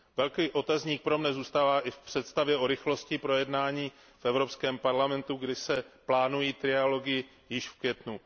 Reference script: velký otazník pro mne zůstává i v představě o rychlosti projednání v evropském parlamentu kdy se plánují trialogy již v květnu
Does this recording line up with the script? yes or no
yes